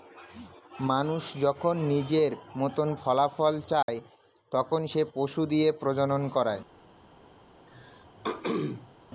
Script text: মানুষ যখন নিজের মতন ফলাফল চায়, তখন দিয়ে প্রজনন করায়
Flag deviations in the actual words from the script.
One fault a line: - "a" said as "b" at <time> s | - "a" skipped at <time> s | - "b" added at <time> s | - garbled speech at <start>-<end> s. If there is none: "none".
- "সে পশু" added at 4.9 s